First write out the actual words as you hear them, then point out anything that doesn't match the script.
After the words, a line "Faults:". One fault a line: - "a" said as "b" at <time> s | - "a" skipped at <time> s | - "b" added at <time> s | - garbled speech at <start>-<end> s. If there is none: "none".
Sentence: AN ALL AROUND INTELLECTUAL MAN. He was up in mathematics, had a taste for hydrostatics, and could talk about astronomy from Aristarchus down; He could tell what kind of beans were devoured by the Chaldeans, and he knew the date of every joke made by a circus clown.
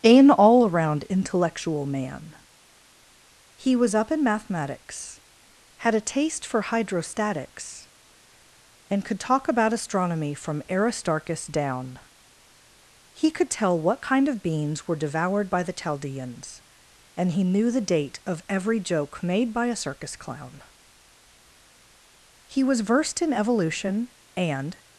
AN ALL AROUND INTELLECTUAL MAN. He was up in mathematics, had a taste for hydrostatics, and could talk about astronomy from Aristarchus down; He could tell what kind of beans were devoured by the Chaldeans, and he knew the date of every joke made by a circus clown. He was versed in evolution, and
Faults:
- "He was versed in evolution and" added at 22.5 s